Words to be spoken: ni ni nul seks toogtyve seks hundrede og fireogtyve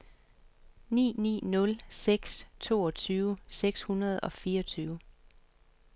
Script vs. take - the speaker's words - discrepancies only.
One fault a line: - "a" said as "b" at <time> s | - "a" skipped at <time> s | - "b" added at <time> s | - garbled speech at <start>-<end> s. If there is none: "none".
none